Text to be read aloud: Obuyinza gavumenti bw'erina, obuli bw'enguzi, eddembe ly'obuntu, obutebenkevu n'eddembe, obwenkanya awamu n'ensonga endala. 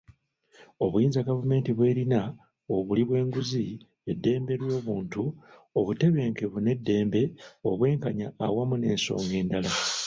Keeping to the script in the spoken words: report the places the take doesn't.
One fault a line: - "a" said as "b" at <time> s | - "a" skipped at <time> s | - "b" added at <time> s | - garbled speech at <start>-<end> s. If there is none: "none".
none